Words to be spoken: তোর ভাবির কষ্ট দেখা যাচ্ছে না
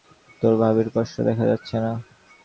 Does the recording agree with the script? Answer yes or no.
yes